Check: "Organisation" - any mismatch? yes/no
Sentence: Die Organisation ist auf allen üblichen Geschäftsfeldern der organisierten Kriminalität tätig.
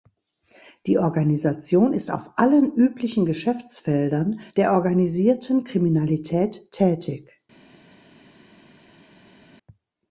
no